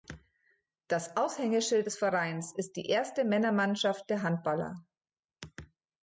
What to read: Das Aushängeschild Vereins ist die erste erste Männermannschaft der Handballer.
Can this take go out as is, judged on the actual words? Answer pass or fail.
fail